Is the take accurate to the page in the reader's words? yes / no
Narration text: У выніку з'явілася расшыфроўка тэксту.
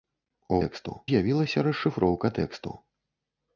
no